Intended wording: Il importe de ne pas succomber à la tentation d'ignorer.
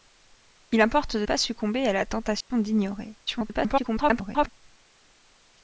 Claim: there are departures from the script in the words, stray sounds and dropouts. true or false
true